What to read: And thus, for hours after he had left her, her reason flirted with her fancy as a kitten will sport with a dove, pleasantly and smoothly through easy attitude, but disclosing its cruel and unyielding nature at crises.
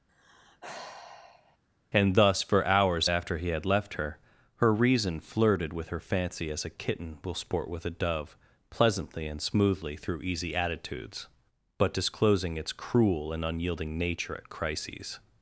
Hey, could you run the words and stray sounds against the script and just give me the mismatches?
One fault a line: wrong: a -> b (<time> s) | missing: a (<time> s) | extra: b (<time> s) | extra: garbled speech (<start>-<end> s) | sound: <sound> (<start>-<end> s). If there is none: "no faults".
sound: sigh (0.1-1.6 s)
wrong: attitude -> attitudes (10.5 s)